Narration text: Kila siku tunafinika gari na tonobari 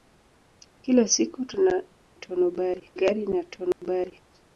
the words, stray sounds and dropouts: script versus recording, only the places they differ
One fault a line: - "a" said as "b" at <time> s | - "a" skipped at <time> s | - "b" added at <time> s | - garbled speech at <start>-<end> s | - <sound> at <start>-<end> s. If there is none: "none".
- "tunafinika" said as "tonobari" at 2.1 s
- dropout at 3.7-3.8 s